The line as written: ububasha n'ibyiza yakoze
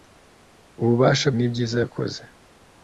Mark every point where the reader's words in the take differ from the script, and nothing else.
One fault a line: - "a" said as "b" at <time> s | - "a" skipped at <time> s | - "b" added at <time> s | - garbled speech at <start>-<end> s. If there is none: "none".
none